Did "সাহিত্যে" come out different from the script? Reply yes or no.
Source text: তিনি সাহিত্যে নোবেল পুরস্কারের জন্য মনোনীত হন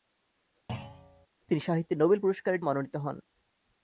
no